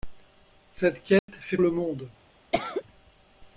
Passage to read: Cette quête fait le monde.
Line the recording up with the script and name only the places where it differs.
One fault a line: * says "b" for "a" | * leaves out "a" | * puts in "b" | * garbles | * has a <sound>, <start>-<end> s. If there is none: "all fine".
* has a dropout, 1.2-1.3 s
* has a cough, 2.5-2.8 s